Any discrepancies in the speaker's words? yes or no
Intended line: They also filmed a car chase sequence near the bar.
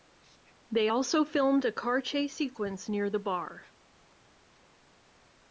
no